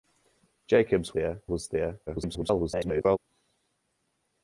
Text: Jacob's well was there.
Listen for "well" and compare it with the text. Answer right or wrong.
wrong